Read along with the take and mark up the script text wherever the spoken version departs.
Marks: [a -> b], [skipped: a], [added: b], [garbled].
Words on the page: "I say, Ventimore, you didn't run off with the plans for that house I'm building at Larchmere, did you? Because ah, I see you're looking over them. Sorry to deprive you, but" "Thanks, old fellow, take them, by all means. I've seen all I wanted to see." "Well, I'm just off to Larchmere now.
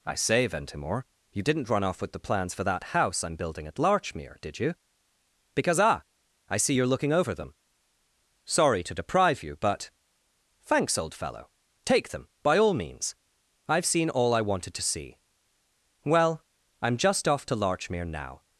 "I say, Ventimore, you didn't run off with the plans for that house I'm building at Larchmere, did you? Because ah, I see you're looking over them. Sorry to deprive you, but" "Thanks, old fellow, take them, by all means. I've seen all I wanted to see." "Well, I'm just off to Larchmere now.